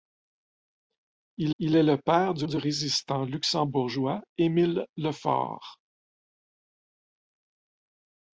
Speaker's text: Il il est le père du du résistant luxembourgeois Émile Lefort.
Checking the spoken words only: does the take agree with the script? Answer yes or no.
yes